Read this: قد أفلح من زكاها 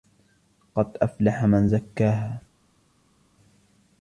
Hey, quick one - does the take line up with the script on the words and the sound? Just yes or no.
yes